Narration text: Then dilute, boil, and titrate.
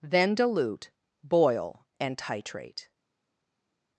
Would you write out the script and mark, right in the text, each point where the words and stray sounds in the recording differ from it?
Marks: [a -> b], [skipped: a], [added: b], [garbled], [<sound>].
Then dilute, boil, and titrate.